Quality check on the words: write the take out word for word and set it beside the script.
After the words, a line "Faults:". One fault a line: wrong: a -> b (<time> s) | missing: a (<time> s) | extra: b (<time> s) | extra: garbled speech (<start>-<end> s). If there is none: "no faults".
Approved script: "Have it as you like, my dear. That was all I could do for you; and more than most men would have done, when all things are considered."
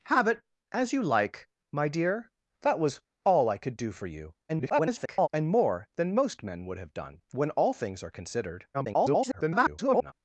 "Have it as you like, my dear. That was all I could do for you; [garbled] and more than most men would have done, when all things are considered." [garbled]
Faults:
extra: garbled speech (4.5-5.3 s)
extra: garbled speech (8.7-10.1 s)